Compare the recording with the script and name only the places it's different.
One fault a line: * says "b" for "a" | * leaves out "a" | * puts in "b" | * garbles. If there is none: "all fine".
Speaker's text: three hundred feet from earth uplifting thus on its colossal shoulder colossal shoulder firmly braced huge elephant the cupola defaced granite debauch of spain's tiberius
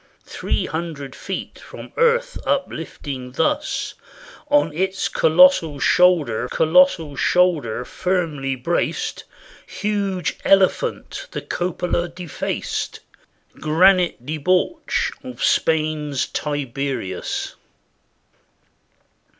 all fine